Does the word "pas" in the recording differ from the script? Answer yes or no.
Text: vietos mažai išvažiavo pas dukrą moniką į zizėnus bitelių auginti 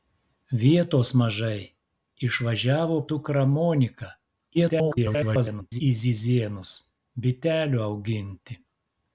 yes